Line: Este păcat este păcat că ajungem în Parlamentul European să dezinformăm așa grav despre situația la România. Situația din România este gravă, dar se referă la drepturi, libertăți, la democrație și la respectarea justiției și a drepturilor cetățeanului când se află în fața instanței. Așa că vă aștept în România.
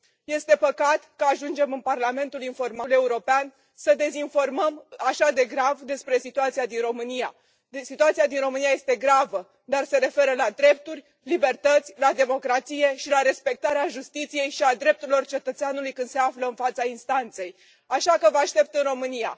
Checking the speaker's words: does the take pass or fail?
fail